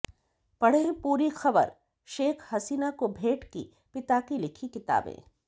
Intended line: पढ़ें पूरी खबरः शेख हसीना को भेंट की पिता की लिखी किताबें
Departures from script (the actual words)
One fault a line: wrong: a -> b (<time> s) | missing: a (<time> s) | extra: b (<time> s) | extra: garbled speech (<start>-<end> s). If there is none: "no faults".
no faults